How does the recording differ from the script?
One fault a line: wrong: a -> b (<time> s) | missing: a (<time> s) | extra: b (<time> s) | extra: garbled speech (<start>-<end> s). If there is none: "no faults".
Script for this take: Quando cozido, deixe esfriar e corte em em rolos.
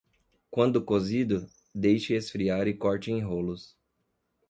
missing: em (3.2 s)